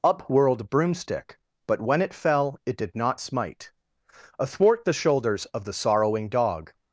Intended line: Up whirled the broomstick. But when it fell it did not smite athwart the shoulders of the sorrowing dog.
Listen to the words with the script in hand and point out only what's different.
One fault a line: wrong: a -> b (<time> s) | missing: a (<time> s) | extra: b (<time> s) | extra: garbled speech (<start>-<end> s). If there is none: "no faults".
missing: the (0.7 s)